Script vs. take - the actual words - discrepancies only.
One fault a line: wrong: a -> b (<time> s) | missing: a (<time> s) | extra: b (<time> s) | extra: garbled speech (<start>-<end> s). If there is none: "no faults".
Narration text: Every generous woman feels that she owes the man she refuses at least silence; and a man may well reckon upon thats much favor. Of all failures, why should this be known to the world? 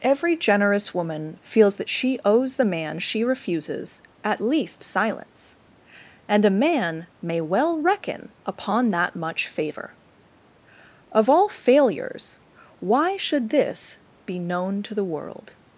wrong: thats -> that (8.9 s)